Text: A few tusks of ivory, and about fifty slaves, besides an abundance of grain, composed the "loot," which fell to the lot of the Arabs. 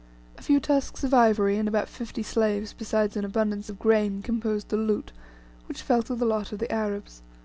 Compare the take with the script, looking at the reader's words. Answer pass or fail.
pass